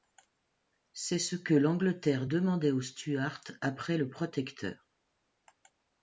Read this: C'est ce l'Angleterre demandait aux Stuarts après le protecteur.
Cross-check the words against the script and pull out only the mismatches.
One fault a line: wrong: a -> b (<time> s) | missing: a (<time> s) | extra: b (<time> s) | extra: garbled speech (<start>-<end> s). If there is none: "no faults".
extra: que (1.4 s)